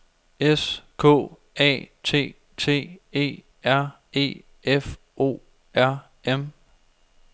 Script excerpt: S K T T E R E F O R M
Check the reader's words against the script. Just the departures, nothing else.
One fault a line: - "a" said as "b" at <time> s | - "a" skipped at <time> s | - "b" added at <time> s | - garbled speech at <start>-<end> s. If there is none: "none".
- "A" added at 1.6 s